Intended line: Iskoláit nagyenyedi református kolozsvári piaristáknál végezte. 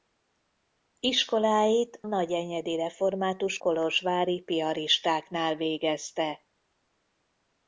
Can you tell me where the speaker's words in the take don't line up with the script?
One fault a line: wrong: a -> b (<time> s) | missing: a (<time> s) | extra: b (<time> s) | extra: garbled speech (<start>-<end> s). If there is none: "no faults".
no faults